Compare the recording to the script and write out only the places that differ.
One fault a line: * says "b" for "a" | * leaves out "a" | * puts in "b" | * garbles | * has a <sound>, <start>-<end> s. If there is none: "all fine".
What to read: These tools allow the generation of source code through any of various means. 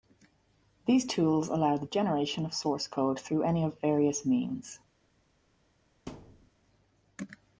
* has a thud, 6.1-6.5 s